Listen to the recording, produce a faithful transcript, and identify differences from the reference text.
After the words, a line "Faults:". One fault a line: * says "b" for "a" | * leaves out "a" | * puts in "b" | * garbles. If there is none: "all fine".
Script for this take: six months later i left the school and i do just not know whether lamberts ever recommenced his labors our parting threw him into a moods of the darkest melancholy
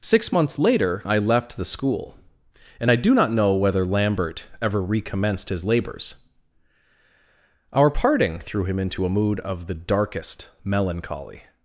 six months later i left the school and i do not know whether lambert ever recommenced his labors our parting threw him into a mood of the darkest melancholy
Faults:
* leaves out "just"
* says "lambert" for "lamberts"
* says "mood" for "moods"